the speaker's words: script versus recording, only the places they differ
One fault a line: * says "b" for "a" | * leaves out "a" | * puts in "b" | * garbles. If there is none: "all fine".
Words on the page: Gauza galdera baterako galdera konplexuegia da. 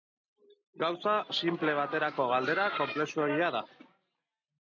* says "sinple" for "galdera"